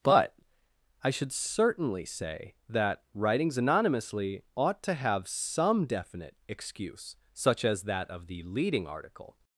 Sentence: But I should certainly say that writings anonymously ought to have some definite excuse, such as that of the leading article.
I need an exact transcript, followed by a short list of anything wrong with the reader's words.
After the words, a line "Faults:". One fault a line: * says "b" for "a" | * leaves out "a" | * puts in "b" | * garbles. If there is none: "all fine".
But I should certainly say that writings anonymously ought to have some definite excuse, such as that of the leading article.
Faults:
all fine